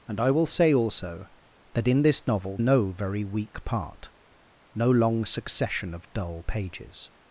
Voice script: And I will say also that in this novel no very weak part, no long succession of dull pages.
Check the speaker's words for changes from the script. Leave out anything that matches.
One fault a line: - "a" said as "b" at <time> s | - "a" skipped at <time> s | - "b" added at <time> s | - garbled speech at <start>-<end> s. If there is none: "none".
none